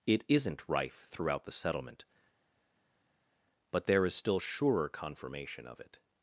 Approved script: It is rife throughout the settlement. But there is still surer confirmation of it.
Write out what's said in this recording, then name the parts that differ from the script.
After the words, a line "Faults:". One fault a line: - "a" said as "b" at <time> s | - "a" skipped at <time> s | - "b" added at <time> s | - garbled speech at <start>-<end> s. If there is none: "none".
It isn't rife throughout the settlement. But there is still surer confirmation of it.
Faults:
- "is" said as "isn't" at 0.3 s